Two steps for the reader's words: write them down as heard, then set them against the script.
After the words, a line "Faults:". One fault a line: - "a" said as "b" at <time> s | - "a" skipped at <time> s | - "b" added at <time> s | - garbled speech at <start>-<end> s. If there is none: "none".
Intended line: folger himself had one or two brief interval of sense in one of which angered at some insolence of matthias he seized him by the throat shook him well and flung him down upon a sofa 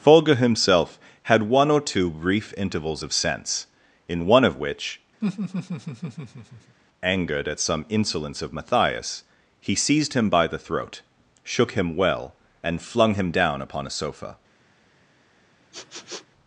folger himself had one or two brief intervals of sense in one of which angered at some insolence of matthias he seized him by the throat shook him well and flung him down upon a sofa
Faults:
- "interval" said as "intervals" at 2.6 s